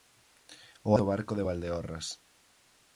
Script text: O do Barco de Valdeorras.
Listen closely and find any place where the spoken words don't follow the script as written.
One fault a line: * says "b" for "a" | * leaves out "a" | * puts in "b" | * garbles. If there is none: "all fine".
all fine